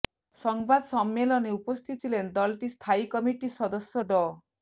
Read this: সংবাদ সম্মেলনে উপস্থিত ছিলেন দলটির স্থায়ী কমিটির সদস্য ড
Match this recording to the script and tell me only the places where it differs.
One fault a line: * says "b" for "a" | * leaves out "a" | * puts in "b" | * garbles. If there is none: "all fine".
all fine